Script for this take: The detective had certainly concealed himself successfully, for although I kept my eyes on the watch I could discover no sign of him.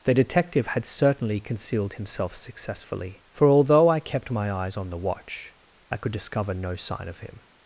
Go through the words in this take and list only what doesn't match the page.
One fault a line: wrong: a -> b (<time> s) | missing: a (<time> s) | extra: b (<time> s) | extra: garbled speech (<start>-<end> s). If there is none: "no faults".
no faults